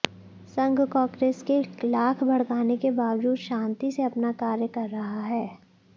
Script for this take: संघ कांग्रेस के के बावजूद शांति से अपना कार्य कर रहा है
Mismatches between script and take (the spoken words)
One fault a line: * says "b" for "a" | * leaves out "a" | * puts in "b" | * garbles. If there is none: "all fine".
* puts in "लाख भड़काने"